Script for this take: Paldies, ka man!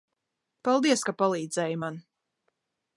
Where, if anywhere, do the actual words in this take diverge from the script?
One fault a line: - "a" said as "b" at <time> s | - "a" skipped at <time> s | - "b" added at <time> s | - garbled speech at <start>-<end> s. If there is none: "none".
- "palīdzēji" added at 1.2 s